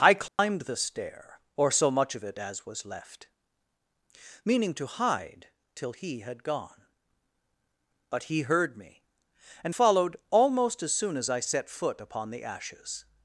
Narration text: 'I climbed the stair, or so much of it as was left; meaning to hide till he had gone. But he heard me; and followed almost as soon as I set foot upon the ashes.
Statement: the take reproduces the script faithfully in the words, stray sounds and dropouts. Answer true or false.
false